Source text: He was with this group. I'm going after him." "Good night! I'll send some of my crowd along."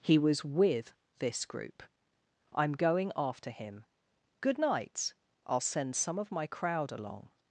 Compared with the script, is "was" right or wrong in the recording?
right